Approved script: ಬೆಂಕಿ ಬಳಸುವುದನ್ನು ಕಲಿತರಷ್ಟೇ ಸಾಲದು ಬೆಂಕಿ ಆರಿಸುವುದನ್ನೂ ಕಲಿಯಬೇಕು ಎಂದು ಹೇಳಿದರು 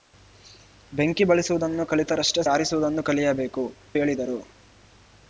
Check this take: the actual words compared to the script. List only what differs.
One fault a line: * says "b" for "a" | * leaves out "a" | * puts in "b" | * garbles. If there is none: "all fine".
* leaves out "ಸಾಲದು ಬೆಂಕಿ"
* leaves out "ಎಂದು"